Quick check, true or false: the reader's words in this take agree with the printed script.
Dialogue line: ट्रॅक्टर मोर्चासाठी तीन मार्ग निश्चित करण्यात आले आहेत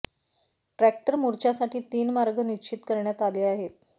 true